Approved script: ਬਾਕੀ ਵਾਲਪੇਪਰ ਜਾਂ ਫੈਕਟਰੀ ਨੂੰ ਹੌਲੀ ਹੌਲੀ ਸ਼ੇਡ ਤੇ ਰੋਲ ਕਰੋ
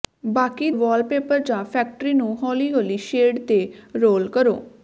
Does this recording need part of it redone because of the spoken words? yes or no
no